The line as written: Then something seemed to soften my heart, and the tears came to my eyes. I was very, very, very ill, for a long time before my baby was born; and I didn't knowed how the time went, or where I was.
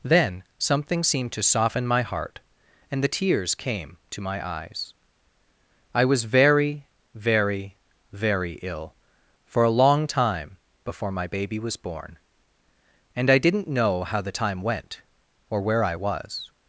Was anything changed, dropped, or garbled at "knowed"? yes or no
yes